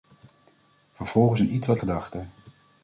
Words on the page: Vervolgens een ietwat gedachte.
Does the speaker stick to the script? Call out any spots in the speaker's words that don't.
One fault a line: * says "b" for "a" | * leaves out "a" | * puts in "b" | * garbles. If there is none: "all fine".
all fine